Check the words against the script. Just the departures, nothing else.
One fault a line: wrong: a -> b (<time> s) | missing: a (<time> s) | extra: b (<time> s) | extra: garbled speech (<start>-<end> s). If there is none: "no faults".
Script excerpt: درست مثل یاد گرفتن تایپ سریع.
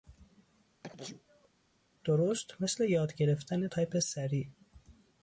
no faults